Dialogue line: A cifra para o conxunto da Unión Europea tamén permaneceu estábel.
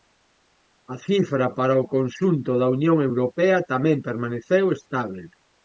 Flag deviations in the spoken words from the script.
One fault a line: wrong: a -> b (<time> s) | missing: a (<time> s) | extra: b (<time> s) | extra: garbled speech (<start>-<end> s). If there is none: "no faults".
no faults